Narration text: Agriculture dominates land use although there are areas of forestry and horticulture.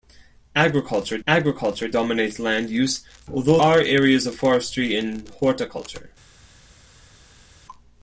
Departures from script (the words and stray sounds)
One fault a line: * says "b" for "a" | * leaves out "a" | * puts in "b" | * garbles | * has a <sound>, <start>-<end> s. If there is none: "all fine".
* puts in "agriculture"
* leaves out "there"